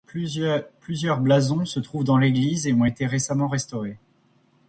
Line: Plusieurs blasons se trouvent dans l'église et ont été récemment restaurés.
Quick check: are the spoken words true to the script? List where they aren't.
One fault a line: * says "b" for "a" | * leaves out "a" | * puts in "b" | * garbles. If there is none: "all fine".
all fine